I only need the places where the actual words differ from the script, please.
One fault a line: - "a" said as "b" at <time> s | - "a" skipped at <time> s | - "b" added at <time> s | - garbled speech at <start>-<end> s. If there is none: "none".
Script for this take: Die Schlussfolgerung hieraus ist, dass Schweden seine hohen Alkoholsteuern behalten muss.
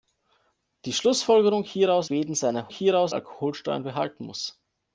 - "ist dass" skipped at 2.1 s
- "hohen" said as "hieraus" at 2.7 s